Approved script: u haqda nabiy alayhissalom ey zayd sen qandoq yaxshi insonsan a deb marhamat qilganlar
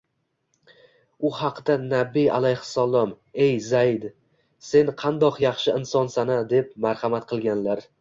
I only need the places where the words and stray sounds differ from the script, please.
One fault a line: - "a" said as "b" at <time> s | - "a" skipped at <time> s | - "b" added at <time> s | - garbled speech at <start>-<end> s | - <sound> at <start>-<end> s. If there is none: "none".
none